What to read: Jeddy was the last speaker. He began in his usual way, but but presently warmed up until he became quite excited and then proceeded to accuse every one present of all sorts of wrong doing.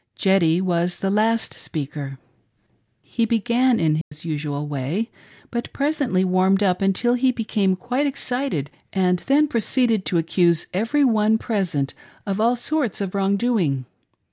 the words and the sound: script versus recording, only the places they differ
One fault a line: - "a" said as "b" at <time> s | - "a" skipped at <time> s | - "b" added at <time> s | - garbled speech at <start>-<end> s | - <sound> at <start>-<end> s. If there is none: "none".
- dropout at 4.0-4.1 s
- "but" skipped at 5.7 s